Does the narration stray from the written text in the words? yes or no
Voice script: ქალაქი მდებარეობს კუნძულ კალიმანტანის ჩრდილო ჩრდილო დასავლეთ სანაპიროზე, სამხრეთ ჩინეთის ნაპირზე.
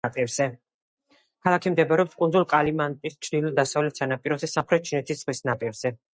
yes